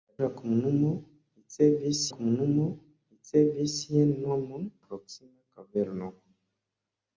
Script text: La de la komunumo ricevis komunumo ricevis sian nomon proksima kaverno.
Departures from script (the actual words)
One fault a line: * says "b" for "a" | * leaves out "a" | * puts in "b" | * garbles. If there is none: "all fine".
all fine